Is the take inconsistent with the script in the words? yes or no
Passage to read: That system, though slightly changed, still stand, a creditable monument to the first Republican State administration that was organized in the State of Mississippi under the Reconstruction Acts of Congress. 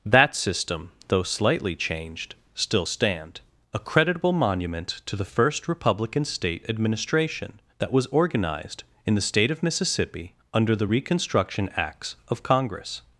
no